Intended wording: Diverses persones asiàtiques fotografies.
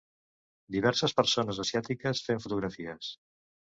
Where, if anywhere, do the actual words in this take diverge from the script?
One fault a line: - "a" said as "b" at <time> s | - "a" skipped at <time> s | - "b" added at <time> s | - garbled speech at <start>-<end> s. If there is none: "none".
- "fent" added at 2.3 s